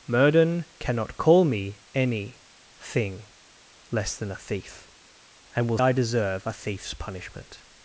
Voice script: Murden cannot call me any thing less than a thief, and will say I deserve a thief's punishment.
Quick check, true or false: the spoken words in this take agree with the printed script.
false